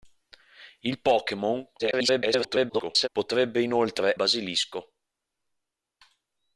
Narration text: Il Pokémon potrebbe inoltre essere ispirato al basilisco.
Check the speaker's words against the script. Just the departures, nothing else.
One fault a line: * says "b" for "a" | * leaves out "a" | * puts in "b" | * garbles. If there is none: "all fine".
* garbles
* leaves out "essere ispirato al"